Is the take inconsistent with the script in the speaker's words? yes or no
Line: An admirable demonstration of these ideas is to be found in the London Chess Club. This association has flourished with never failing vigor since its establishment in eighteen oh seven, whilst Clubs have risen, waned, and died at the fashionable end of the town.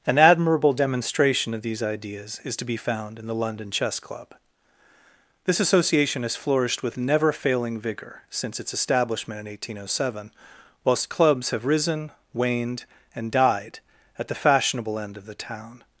no